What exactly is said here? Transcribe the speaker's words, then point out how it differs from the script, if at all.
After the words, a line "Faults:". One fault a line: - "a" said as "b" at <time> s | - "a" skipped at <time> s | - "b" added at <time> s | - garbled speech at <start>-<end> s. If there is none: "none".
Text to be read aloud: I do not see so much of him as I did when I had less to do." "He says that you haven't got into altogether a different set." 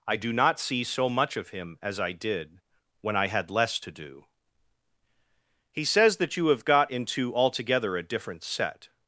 I do not see so much of him as I did when I had less to do." "He says that you have got into altogether a different set."
Faults:
- "haven't" said as "have" at 6.5 s